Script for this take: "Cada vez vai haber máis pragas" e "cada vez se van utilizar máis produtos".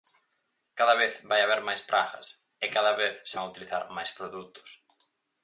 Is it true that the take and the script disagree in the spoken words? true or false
false